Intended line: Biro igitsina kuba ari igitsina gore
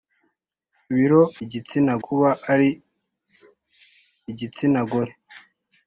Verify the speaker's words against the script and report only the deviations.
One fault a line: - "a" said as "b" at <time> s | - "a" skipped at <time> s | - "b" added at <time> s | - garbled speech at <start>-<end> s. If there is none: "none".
none